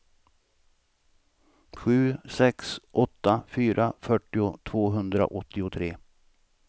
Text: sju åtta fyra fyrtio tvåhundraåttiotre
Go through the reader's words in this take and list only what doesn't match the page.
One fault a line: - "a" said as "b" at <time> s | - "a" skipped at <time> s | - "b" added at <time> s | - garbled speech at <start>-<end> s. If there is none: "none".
- "sex" added at 2.3 s